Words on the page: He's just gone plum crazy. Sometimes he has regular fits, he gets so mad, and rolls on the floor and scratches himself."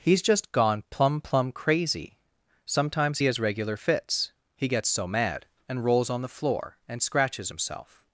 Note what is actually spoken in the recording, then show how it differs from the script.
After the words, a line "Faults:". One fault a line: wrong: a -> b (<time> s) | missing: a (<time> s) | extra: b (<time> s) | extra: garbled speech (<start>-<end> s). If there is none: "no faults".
He's just gone plum plum crazy. Sometimes he has regular fits, he gets so mad, and rolls on the floor and scratches himself."
Faults:
extra: plum (1.2 s)